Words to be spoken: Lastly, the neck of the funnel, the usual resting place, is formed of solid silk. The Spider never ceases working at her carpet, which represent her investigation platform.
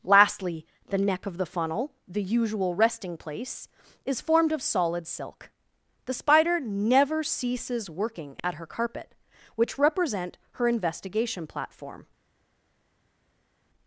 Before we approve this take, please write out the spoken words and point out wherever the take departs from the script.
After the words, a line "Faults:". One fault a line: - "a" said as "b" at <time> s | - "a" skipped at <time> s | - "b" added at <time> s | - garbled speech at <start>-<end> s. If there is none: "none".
Lastly, the neck of the funnel, the usual resting place, is formed of solid silk. The Spider never ceases working at her carpet, which represent her investigation platform.
Faults:
none